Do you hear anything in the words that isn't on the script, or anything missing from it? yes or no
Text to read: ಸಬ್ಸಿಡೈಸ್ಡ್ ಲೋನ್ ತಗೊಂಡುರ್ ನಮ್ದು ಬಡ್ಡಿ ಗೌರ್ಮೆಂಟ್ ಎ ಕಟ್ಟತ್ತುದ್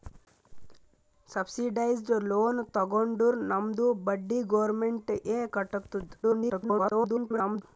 yes